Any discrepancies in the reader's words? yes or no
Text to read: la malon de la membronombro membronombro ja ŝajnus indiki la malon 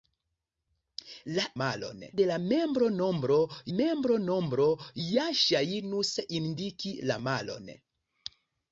no